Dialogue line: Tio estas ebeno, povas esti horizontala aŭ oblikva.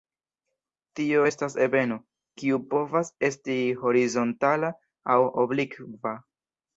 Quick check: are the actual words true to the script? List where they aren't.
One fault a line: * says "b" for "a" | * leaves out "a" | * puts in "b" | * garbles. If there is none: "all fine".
* puts in "kiu"